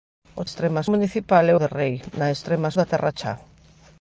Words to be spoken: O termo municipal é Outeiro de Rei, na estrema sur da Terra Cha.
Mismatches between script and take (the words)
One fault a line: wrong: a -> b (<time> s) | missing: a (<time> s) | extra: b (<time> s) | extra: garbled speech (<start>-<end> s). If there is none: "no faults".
wrong: termo -> estrema (0.5 s)
missing: Outeiro (1.5 s)
missing: sur (2.7 s)